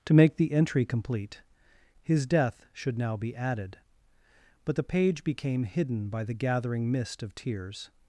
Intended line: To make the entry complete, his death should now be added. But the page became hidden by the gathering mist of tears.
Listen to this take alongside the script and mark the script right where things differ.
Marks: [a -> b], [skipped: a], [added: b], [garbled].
To make the entry complete, his death should now be added. But the page became hidden by the gathering mist of tears.